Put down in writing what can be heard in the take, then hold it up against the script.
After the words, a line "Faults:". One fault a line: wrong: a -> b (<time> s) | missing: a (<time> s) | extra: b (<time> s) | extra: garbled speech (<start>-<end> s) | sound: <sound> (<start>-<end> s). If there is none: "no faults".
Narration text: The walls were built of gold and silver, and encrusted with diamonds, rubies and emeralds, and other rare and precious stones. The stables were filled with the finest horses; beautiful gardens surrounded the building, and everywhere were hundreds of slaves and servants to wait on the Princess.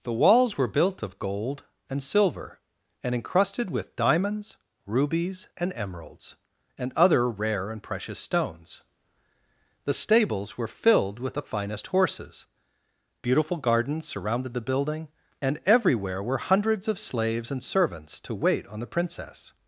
The walls were built of gold and silver, and encrusted with diamonds, rubies and emeralds, and other rare and precious stones. The stables were filled with the finest horses; beautiful gardens surrounded the building, and everywhere were hundreds of slaves and servants to wait on the Princess.
Faults:
no faults